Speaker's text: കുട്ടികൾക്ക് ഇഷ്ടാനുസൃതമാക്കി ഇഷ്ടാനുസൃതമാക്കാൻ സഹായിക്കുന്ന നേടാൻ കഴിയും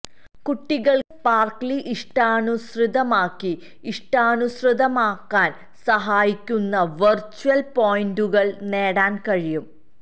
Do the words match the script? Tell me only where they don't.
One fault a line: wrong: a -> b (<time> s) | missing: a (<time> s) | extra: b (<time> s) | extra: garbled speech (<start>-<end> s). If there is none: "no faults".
extra: സ്പാർക്ക്ലി (1.1 s)
extra: വെർച്വൽ പോയിന്റുകൾ (7.0 s)